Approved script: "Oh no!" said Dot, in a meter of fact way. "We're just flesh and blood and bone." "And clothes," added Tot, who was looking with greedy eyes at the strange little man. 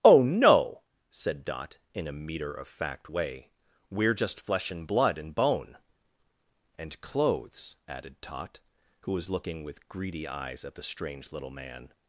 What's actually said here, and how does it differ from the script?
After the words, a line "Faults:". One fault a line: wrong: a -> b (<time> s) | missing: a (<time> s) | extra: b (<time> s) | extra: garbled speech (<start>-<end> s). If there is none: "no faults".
"Oh no!" said Dot, in a meter of fact way. "We're just flesh and blood and bone." "And clothes," added Tot, who was looking with greedy eyes at the strange little man.
Faults:
no faults